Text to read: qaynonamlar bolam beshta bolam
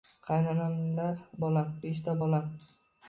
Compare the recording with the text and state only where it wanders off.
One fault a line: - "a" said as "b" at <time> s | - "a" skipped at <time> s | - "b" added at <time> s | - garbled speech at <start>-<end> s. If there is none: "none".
none